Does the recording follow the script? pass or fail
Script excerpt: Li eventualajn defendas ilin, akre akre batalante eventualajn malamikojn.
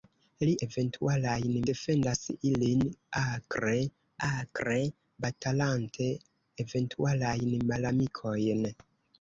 pass